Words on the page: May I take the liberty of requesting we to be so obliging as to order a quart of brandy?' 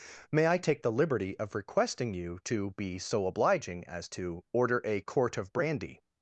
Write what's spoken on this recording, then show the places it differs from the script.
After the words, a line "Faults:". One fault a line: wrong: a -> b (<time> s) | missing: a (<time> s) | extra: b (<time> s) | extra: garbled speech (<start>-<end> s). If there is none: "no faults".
May I take the liberty of requesting you to be so obliging as to order a quart of brandy?'
Faults:
wrong: we -> you (2.1 s)